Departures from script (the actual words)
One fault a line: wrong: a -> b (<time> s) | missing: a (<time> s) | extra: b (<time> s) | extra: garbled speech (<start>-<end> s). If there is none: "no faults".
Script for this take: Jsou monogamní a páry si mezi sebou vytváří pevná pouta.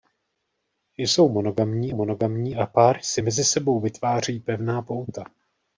extra: monogamní (1.9 s)